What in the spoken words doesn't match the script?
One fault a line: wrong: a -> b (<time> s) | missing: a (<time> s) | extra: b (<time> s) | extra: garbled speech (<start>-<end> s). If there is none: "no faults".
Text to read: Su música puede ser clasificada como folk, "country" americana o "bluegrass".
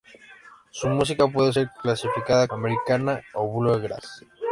missing: como folk country (2.5 s)